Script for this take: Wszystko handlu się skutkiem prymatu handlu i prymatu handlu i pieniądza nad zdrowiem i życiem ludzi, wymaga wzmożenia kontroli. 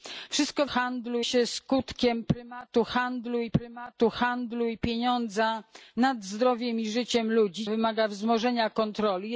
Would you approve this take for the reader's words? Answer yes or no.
yes